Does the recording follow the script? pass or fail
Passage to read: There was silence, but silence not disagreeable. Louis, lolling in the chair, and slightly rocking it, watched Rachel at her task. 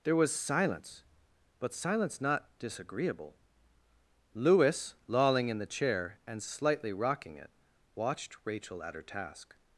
pass